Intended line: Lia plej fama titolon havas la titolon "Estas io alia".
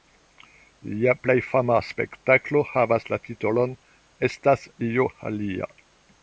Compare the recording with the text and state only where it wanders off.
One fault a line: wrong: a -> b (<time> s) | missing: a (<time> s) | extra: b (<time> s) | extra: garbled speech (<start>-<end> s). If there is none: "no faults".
wrong: titolon -> spektaklo (1.9 s)